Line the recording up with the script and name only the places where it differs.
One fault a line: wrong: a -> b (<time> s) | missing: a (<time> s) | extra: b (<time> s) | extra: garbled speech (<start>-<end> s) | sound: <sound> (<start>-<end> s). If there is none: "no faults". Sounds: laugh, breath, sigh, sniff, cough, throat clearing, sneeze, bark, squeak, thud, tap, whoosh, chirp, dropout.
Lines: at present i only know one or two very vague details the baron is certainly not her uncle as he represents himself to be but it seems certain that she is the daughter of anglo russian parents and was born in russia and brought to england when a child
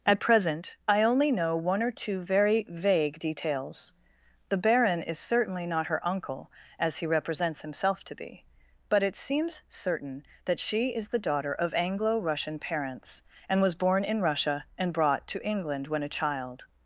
no faults